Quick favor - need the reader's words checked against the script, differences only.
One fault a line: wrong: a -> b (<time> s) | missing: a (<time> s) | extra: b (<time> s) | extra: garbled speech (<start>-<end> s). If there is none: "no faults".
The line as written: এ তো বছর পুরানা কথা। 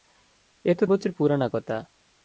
no faults